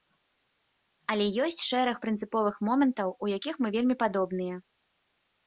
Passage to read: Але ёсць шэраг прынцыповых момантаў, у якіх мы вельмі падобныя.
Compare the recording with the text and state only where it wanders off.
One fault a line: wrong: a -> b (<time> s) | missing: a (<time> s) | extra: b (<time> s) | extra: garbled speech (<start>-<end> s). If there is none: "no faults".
no faults